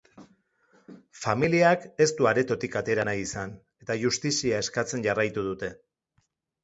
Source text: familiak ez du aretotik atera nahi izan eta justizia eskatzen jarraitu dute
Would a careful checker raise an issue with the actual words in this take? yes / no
no